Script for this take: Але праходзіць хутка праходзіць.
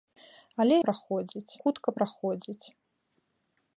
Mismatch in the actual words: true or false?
false